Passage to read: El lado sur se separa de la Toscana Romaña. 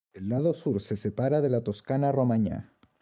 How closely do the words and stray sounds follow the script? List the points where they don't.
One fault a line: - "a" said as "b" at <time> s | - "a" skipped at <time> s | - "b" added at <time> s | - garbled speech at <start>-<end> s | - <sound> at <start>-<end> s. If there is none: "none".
none